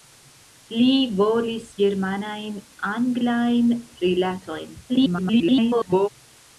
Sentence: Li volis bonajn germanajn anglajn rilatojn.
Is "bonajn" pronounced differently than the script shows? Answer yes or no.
yes